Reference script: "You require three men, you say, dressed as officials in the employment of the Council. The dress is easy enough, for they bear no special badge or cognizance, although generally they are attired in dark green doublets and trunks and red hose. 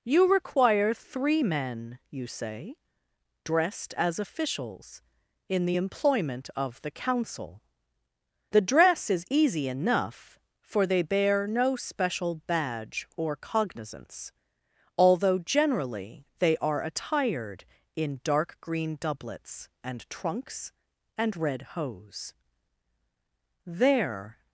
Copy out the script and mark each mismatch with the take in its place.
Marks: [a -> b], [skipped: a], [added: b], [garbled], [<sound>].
"You require three men, you say, dressed as officials in the employment of the Council. The dress is easy enough, for they bear no special badge or cognizance, although generally they are attired in dark green doublets and trunks and red hose. [added: There]